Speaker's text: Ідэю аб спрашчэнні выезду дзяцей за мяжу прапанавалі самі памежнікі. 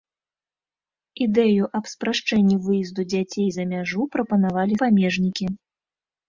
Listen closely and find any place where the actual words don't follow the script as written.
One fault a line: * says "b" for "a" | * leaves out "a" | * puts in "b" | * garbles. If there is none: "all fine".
* leaves out "самі"